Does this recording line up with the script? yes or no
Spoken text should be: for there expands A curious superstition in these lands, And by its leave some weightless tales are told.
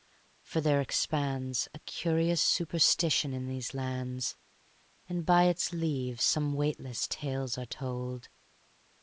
yes